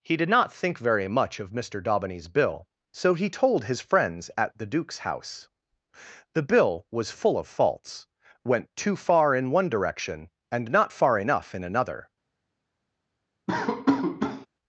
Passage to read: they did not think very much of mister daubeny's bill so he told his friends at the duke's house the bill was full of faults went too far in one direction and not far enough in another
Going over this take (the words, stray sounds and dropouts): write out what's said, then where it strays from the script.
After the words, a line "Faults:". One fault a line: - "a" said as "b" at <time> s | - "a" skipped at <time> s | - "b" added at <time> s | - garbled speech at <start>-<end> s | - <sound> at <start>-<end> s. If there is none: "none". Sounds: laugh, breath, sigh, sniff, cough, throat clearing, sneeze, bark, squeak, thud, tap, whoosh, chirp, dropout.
he did not think very much of mister daubeny's bill so he told his friends at the duke's house the bill was full of faults went too far in one direction and not far enough in another
Faults:
- "they" said as "he" at 0.0 s
- laugh at 13.5-14.5 s